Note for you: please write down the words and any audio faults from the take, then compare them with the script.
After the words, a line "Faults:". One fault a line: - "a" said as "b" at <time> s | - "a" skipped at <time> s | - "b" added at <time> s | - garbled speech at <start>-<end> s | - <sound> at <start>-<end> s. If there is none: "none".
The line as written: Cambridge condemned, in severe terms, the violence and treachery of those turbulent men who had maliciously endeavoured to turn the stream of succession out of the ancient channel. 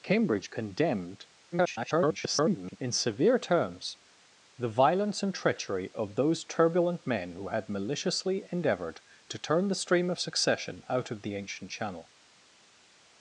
Cambridge condemned, [garbled] in severe terms, the violence and treachery of those turbulent men who had maliciously endeavoured to turn the stream of succession out of the ancient channel.
Faults:
- garbled speech at 1.5-2.8 s